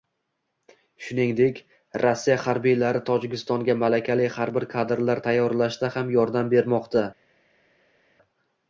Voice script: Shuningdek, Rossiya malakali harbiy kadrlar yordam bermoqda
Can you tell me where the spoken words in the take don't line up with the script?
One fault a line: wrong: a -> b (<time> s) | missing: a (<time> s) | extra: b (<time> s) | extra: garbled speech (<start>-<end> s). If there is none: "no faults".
extra: harbiylari Tojikistonga (2.5 s)
extra: tayyorlashda ham (5.3 s)